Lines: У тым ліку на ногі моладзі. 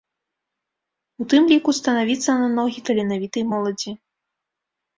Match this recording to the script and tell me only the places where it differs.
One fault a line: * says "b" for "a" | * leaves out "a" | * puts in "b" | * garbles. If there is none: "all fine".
* puts in "станавіцца"
* puts in "таленавітай"